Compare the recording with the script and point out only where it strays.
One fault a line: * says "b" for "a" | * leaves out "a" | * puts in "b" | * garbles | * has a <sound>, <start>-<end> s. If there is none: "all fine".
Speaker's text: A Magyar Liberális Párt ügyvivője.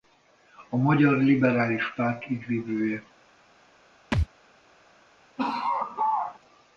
* has a thud, 4.1-4.3 s
* has a laugh, 5.4-6.4 s